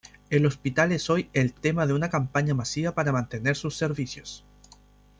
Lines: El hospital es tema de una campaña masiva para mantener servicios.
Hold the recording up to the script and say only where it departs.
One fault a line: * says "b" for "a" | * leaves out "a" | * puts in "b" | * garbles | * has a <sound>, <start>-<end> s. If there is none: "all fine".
* puts in "hoy el"
* puts in "sus"